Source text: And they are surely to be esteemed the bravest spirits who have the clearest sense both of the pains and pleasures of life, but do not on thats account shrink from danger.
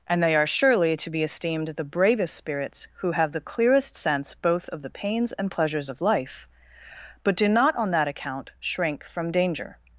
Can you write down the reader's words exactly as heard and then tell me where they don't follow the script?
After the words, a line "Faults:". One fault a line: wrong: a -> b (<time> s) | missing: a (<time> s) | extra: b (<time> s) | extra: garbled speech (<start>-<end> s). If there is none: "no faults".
And they are surely to be esteemed the bravest spirits who have the clearest sense both of the pains and pleasures of life, but do not on that account shrink from danger.
Faults:
wrong: thats -> that (7.9 s)